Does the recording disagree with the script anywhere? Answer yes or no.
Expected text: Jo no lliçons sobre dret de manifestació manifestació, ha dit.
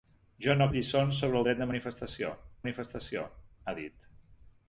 no